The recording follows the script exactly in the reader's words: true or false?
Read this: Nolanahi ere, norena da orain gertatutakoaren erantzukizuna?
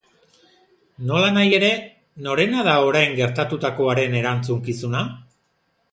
true